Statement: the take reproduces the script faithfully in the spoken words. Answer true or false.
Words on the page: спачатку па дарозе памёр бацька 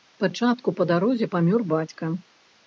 true